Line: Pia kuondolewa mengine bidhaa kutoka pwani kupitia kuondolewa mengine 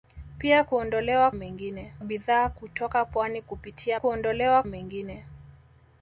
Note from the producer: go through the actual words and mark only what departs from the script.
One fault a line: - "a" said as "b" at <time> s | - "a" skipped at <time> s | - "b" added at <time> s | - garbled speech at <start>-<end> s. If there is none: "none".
none